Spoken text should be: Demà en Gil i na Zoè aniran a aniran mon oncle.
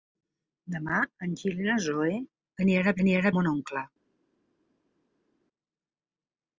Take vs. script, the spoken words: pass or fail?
pass